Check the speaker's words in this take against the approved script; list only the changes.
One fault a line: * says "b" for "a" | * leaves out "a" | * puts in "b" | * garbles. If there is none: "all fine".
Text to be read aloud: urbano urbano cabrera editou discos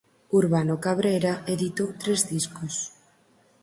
* leaves out "urbano"
* puts in "tres"